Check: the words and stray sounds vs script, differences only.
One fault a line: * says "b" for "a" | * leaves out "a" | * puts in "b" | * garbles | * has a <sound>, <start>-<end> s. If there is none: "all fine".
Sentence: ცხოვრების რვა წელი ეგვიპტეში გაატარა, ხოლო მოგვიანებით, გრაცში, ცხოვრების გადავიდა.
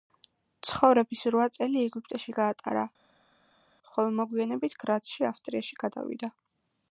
* says "ავსტრიაში" for "ცხოვრების"